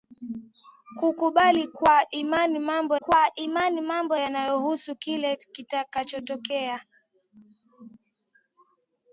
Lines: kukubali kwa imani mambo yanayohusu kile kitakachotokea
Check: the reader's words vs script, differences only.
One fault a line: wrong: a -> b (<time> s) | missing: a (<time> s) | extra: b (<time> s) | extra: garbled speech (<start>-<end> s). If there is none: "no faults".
extra: kwa imani mambo (2.9 s)